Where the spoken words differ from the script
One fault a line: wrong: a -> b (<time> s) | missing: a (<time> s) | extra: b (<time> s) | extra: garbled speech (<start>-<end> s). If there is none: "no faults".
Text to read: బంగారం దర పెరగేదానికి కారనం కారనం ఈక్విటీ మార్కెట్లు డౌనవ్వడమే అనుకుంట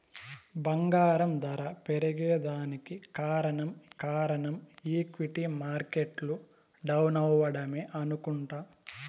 no faults